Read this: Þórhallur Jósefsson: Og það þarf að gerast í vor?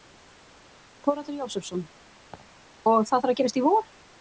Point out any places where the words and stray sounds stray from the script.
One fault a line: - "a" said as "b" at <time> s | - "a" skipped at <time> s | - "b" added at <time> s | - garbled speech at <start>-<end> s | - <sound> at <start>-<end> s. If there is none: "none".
- laugh at 2.3-2.5 s